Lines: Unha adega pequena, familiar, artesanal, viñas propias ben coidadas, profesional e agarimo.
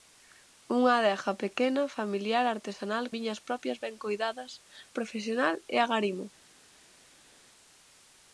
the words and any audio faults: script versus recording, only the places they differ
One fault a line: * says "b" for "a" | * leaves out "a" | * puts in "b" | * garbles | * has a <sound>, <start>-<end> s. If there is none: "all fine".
all fine